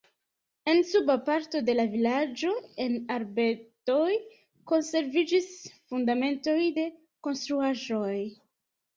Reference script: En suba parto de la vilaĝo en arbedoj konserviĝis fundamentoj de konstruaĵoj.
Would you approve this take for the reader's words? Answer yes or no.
yes